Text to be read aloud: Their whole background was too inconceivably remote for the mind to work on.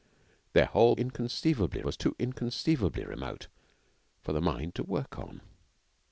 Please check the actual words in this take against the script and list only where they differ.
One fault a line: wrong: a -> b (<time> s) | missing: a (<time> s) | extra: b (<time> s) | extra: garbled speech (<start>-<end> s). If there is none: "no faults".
wrong: background -> inconceivably (1.0 s)